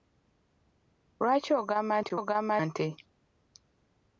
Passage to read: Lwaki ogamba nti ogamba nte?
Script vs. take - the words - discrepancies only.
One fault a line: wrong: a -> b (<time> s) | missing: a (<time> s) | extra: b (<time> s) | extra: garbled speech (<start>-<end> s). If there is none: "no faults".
no faults